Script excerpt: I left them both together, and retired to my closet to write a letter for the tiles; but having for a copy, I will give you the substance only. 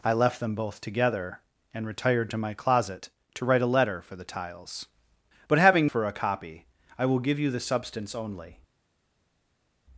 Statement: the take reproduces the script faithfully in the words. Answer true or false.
true